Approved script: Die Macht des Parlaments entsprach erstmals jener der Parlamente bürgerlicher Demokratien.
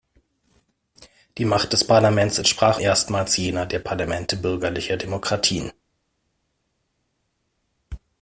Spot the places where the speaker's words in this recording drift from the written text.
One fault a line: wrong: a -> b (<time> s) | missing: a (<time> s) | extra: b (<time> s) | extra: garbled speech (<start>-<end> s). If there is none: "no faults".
no faults